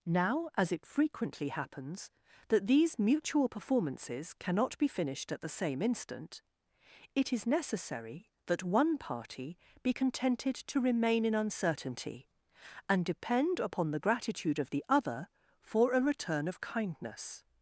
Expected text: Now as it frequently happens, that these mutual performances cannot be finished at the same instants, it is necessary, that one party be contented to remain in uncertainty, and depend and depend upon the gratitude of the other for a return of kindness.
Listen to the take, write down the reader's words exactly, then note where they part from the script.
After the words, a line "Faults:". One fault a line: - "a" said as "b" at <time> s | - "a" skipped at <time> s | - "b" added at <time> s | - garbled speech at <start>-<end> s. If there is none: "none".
Now as it frequently happens, that these mutual performances cannot be finished at the same instant, it is necessary, that one party be contented to remain in uncertainty, and depend upon the gratitude of the other for a return of kindness.
Faults:
- "instants" said as "instant" at 5.8 s
- "and depend" skipped at 13.6 s